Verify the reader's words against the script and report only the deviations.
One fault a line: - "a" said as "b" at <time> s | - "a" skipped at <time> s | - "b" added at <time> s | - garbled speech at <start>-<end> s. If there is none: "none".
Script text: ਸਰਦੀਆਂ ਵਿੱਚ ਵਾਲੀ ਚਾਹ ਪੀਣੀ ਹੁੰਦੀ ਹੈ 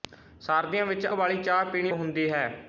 none